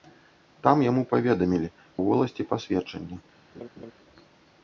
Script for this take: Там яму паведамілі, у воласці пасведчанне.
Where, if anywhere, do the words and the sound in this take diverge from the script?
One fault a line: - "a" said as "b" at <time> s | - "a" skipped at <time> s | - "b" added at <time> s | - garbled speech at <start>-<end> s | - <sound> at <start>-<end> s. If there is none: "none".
- laugh at 3.5-3.9 s